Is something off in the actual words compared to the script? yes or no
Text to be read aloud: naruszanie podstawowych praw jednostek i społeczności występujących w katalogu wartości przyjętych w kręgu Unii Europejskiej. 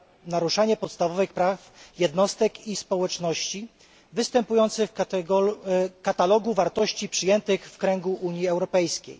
no